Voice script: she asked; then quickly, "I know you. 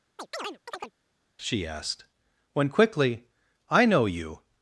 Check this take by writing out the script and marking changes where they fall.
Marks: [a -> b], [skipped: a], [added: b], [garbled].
she asked; [then -> when] quickly, "I know you.